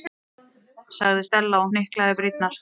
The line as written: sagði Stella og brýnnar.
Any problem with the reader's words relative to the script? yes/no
yes